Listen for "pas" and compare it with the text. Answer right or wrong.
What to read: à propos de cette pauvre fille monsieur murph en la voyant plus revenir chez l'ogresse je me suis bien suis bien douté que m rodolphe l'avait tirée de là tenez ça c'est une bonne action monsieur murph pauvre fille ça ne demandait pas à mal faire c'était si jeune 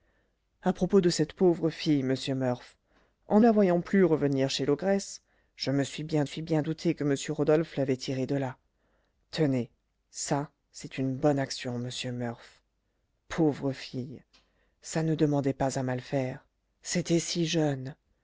right